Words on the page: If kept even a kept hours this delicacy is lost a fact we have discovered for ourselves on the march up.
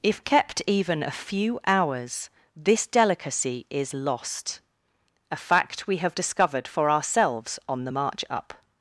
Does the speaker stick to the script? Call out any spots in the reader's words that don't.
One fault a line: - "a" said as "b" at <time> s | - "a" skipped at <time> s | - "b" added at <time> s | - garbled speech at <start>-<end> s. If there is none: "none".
- "kept" said as "few" at 1.1 s